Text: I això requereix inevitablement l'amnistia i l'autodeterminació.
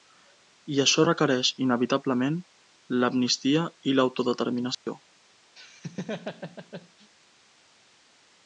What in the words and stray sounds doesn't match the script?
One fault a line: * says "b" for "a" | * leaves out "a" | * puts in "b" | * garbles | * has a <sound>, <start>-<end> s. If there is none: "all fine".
* has a dropout, 4.7-4.9 s
* has a laugh, 5.6-7.1 s